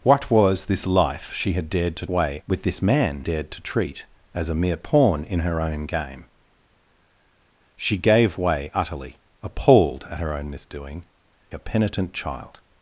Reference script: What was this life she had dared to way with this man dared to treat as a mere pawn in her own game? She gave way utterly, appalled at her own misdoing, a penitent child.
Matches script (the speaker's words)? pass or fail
pass